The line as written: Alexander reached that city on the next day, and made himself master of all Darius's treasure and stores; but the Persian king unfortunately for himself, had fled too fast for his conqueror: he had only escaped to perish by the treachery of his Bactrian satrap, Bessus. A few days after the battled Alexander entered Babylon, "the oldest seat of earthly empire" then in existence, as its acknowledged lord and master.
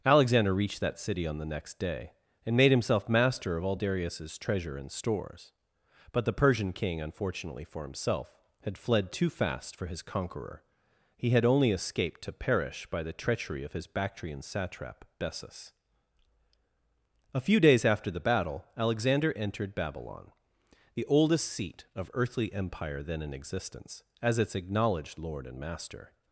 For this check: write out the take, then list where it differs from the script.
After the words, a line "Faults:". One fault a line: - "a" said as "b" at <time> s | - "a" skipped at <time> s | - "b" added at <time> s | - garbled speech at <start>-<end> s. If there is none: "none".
Alexander reached that city on the next day, and made himself master of all Darius's treasure and stores; but the Persian king unfortunately for himself, had fled too fast for his conqueror: he had only escaped to perish by the treachery of his Bactrian satrap, Bessus. A few days after the battle Alexander entered Babylon, "the oldest seat of earthly empire" then in existence, as its acknowledged lord and master.
Faults:
- "battled" said as "battle" at 18.2 s